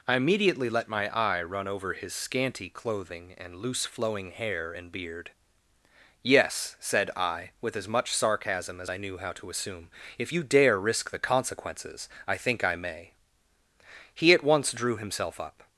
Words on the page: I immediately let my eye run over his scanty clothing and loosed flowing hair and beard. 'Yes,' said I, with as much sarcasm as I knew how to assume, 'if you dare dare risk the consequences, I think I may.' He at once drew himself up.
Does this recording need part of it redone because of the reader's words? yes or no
yes